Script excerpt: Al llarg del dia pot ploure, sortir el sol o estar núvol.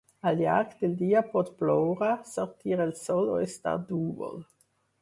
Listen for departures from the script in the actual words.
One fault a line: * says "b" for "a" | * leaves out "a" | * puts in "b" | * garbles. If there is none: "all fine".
all fine